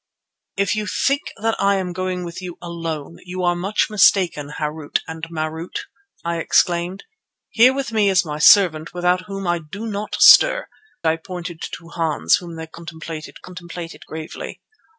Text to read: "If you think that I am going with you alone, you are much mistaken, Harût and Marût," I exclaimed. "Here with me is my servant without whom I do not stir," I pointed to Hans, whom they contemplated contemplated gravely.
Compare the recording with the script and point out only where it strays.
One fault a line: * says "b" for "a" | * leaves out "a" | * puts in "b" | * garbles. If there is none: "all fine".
all fine